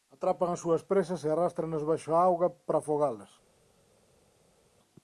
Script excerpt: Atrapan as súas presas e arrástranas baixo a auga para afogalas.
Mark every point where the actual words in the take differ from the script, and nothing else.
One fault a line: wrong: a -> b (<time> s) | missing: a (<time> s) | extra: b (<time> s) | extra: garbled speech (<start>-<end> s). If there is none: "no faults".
no faults